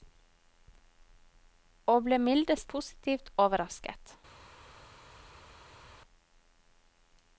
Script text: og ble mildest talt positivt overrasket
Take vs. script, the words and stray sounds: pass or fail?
fail